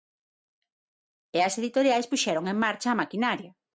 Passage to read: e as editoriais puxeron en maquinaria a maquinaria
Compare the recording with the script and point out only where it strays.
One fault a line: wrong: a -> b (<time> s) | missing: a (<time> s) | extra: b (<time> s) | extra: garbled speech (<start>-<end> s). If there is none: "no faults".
wrong: maquinaria -> marcha (2.6 s)